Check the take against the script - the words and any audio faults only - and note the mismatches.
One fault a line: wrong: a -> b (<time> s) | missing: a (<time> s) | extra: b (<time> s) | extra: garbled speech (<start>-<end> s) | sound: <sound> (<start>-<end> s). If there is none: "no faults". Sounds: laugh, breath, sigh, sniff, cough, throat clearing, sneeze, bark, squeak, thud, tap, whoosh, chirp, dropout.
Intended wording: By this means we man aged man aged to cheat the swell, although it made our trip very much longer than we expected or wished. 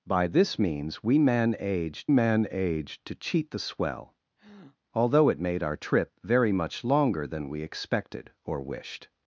sound: breath (4.4-4.8 s)